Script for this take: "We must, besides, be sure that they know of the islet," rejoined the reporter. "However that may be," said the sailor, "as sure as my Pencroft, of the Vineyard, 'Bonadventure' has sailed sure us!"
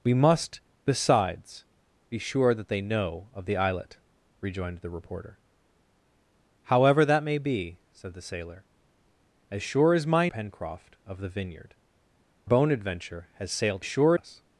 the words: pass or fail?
pass